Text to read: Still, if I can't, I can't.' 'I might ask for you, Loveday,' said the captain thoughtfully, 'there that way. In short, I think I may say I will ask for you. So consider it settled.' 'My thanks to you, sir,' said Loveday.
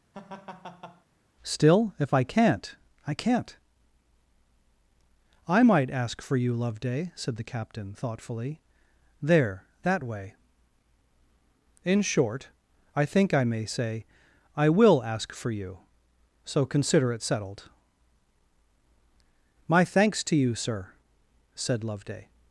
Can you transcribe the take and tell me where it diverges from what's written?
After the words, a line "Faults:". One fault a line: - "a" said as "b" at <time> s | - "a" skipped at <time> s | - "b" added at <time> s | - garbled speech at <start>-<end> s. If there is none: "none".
Still, if I can't, I can't.' 'I might ask for you, Loveday,' said the captain thoughtfully, 'there that way. In short, I think I may say I will ask for you. So consider it settled.' 'My thanks to you, sir,' said Loveday.
Faults:
none